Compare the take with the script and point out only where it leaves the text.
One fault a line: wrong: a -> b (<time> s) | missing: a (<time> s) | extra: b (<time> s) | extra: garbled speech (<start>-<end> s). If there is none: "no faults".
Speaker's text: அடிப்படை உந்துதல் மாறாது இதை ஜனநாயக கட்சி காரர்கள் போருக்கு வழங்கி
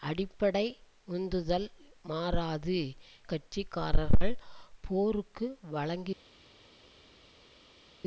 missing: இதை ஜனநாயக (2.8 s)